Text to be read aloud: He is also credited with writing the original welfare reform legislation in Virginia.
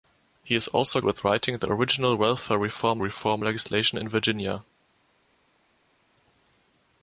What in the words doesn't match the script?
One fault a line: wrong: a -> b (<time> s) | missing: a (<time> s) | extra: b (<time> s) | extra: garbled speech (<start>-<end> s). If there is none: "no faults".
missing: credited (1.0 s)
extra: reform (3.0 s)